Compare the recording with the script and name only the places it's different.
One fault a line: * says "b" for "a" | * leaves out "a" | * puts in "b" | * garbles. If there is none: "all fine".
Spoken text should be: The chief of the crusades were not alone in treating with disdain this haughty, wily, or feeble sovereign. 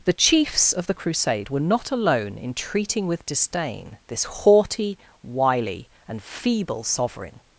* says "chiefs" for "chief"
* says "crusade" for "crusades"
* says "and" for "or"